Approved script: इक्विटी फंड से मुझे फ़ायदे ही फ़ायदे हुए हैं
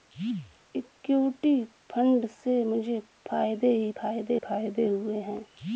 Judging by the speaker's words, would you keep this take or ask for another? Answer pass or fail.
fail